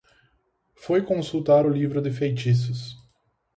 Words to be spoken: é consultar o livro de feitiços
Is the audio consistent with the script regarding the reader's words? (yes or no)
no